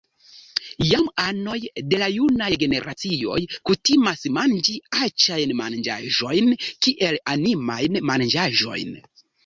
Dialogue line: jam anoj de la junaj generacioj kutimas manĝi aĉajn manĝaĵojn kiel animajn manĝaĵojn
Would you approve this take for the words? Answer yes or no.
yes